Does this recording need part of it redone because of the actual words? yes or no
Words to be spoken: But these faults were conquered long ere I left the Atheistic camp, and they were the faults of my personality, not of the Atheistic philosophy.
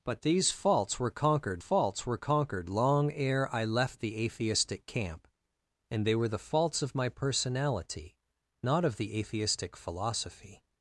yes